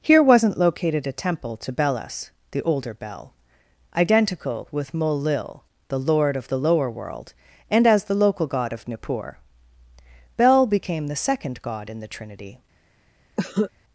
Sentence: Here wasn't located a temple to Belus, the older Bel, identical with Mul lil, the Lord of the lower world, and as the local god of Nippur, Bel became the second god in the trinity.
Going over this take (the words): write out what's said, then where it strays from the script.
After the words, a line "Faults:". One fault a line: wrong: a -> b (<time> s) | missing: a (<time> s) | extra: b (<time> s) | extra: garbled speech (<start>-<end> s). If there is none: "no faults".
Here wasn't located a temple to Belus, the older Bel, identical with Mul lil, the Lord of the lower world, and as the local god of Nippur, Bel became the second god in the trinity.
Faults:
no faults